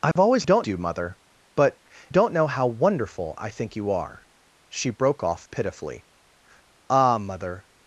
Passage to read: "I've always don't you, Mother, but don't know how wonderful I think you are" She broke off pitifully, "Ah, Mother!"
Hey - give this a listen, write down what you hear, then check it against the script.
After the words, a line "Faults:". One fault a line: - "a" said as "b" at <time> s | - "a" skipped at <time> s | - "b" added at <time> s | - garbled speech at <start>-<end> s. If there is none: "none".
"I've always don't you, Mother, but don't know how wonderful I think you are" She broke off pitifully, "Ah, Mother!"
Faults:
none